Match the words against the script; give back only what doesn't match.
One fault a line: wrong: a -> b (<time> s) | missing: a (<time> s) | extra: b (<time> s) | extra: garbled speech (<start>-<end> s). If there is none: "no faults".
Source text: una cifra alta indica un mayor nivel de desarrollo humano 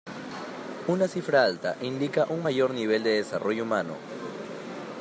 no faults